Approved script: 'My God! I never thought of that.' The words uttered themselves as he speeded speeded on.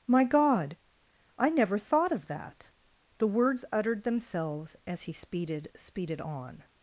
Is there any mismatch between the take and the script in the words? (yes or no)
no